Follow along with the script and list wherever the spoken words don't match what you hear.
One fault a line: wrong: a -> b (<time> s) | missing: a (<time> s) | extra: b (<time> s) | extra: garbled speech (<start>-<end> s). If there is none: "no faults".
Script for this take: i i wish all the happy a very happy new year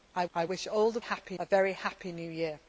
no faults